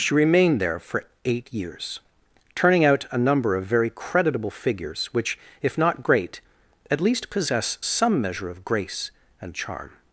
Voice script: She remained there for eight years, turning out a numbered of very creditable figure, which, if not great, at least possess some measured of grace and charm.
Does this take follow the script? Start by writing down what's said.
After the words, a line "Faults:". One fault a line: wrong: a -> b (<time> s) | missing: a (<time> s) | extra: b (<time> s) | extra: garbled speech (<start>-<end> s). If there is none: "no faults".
She remained there for eight years, turning out a number of very creditable figures, which, if not great, at least possess some measure of grace and charm.
Faults:
wrong: numbered -> number (3.2 s)
wrong: figure -> figures (4.5 s)
wrong: measured -> measure (8.2 s)